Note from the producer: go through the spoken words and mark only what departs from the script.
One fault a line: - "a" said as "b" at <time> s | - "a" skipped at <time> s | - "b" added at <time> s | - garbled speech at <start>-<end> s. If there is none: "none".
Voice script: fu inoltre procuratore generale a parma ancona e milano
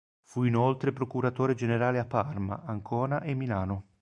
none